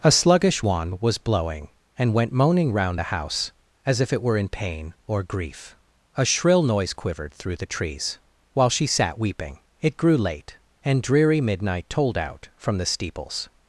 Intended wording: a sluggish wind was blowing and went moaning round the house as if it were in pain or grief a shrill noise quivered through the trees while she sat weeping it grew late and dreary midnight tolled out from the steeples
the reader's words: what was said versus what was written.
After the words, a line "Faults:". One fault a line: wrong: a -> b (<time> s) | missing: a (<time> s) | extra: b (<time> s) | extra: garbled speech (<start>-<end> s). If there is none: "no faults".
a sluggish wand was blowing and went moaning round the house as if it were in pain or grief a shrill noise quivered through the trees while she sat weeping it grew late and dreary midnight tolled out from the steeples
Faults:
wrong: wind -> wand (0.6 s)